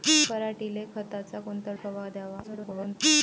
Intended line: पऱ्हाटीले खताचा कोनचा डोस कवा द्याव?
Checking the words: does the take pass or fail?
fail